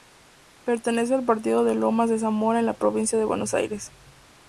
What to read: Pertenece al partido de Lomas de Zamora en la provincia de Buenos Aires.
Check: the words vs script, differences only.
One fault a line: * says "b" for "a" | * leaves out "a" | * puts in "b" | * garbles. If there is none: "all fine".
all fine